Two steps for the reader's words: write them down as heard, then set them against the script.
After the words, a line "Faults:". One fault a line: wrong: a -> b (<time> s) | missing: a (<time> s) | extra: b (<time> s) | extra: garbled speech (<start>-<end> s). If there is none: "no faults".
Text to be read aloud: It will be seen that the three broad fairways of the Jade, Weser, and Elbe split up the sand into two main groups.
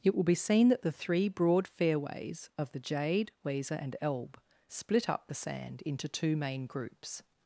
It will be seen that the three broad fairways of the Jade, Weser, and Elbe split up the sand into two main groups.
Faults:
no faults